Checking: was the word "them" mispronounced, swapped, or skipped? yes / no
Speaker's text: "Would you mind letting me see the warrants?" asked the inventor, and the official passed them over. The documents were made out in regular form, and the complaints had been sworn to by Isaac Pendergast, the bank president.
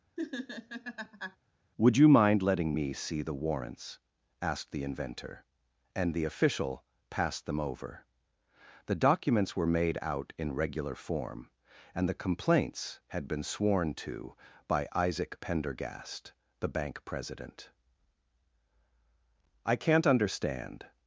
no